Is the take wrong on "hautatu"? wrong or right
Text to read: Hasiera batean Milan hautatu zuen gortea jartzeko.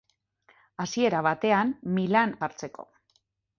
wrong